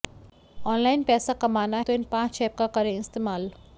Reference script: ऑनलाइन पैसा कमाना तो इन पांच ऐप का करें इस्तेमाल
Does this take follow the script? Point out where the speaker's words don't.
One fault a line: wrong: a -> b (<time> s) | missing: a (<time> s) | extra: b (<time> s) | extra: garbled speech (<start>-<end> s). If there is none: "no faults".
no faults